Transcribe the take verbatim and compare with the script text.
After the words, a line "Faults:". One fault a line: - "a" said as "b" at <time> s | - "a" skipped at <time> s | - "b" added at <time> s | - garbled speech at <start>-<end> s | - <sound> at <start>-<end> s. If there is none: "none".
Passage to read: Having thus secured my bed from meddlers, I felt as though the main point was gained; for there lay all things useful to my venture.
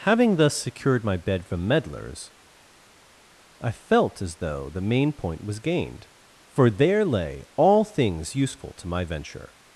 Having thus secured my bed from meddlers, I felt as though the main point was gained; for there lay all things useful to my venture.
Faults:
none